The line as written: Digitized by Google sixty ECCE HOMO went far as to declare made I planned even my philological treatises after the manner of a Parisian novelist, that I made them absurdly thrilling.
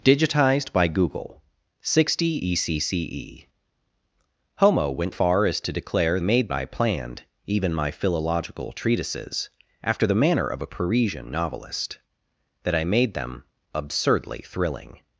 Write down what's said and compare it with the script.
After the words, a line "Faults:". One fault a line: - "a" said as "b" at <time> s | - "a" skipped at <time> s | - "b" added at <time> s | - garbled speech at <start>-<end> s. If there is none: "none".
Digitized by Google sixty ECCE HOMO went far as to declare made I planned even my philological treatises after the manner of a Parisian novelist, that I made them absurdly thrilling.
Faults:
none